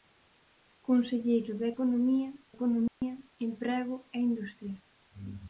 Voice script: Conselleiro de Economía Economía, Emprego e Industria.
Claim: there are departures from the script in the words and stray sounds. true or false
true